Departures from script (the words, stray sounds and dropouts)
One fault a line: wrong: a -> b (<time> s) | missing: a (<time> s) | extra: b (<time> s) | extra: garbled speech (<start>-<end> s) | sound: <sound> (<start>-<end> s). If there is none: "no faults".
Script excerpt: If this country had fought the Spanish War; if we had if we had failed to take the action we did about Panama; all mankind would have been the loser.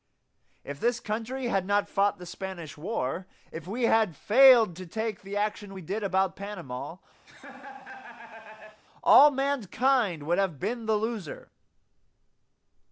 extra: not (1.7 s)
missing: if we had (4.2 s)
sound: laugh (7.3-8.8 s)